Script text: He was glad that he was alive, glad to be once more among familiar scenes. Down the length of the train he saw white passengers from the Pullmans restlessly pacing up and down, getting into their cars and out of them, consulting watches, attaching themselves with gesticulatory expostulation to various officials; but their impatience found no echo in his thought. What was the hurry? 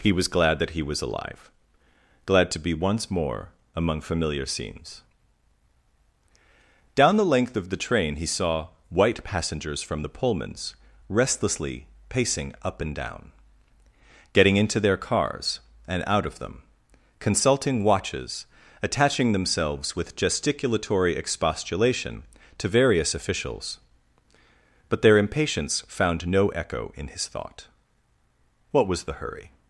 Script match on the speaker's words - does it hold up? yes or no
yes